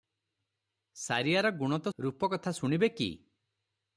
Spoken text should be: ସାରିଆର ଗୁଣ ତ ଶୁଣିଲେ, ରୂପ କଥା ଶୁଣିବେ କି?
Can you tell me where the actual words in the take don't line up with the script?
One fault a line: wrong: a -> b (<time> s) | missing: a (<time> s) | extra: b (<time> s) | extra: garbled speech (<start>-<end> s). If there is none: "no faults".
missing: ଶୁଣିଲେ (1.9 s)